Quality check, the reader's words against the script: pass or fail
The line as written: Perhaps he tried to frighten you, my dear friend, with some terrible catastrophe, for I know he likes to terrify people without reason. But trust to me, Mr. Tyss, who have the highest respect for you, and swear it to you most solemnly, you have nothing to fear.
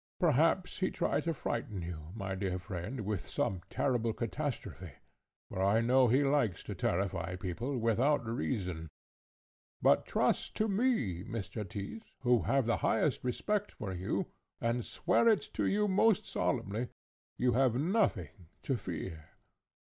pass